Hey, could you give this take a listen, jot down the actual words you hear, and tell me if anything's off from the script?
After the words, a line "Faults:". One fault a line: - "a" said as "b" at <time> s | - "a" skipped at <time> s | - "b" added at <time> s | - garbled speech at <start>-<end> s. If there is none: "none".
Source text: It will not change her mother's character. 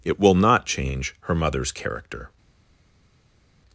It will not change her mother's character.
Faults:
none